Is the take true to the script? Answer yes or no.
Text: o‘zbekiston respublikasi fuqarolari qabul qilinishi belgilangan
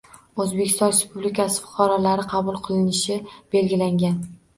yes